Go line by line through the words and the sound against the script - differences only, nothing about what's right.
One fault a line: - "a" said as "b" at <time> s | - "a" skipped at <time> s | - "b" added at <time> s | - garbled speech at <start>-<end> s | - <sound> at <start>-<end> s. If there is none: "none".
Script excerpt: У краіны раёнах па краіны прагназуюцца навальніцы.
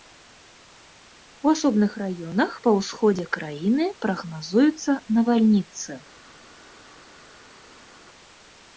- "краіны" said as "асобных" at 1.6 s
- "ўсходзе" added at 2.8 s